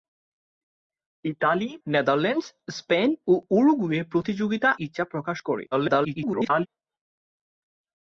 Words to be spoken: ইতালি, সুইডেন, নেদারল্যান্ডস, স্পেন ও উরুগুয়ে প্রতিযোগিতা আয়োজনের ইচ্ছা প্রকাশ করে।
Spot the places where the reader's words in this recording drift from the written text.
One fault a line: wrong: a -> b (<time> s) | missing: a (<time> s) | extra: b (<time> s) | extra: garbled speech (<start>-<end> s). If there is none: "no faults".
missing: সুইডেন (1.7 s)
missing: আয়োজনের (4.7 s)
extra: garbled speech (5.7-6.7 s)